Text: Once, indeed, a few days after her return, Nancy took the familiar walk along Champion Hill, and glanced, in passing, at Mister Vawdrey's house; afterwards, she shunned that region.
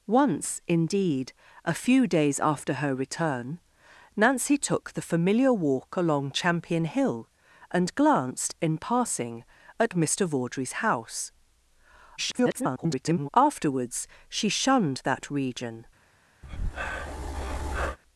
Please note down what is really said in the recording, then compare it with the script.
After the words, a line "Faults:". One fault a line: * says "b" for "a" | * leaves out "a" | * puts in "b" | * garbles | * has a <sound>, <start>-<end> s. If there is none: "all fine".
Once, indeed, a few days after her return, Nancy took the familiar walk along Champion Hill, and glanced, in passing, at Mister Vawdrey's house; [garbled] afterwards, she shunned that region.
Faults:
* garbles
* has a breath, 16.4-18.0 s